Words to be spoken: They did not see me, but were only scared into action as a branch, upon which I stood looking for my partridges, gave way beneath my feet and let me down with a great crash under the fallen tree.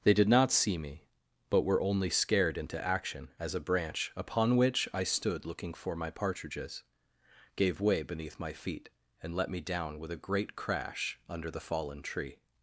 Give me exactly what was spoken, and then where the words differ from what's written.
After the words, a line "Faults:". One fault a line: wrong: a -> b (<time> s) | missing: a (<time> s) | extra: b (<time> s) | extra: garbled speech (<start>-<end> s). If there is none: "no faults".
They did not see me, but were only scared into action as a branch, upon which I stood looking for my partridges, gave way beneath my feet and let me down with a great crash under the fallen tree.
Faults:
no faults